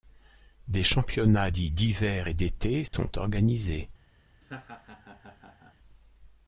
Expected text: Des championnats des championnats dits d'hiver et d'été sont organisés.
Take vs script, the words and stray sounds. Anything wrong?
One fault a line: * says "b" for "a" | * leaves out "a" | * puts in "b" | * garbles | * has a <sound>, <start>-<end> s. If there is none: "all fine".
* leaves out "des championnats"
* has a dropout, 2.9-2.9 s
* has a laugh, 4.4-5.8 s